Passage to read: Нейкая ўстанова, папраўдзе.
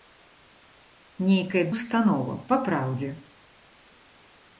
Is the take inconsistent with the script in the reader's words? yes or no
no